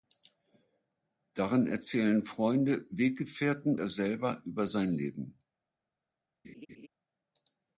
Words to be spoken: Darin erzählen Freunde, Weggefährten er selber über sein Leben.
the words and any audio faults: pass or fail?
fail